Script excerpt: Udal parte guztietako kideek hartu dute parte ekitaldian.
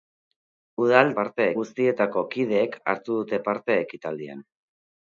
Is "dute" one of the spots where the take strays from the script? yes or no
no